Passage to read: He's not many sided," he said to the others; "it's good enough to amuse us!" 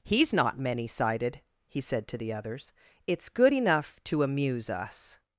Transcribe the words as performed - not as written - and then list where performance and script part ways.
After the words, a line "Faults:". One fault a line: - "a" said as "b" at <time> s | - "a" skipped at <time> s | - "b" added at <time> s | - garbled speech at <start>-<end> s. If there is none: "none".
He's not many sided," he said to the others; "it's good enough to amuse us!"
Faults:
none